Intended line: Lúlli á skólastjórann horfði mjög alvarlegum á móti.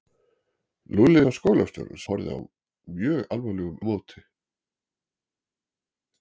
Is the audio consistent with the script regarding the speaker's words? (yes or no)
yes